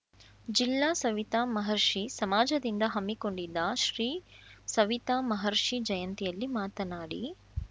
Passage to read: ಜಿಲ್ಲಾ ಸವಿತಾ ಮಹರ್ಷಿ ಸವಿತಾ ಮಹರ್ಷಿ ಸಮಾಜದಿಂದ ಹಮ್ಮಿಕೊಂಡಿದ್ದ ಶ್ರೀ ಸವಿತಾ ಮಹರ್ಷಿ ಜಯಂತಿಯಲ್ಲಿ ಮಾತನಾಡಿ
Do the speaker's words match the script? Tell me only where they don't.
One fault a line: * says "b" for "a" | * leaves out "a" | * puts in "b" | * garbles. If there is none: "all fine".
* leaves out "ಸವಿತಾ ಮಹರ್ಷಿ"